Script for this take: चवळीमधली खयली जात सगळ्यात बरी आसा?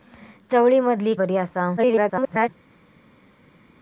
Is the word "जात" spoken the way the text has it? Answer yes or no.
no